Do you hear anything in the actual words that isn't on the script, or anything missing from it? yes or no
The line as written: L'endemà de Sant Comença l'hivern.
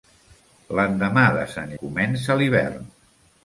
no